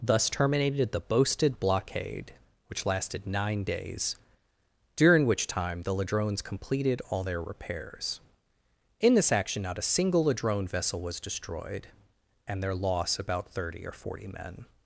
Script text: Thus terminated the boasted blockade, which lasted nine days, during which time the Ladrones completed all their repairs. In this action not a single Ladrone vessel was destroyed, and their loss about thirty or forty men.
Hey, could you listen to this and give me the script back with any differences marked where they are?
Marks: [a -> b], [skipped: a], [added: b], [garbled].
Thus terminated the boasted blockade, which lasted nine days, during which time the Ladrones completed all their repairs. In this action not a single Ladrone vessel was destroyed, and their loss about thirty or forty men.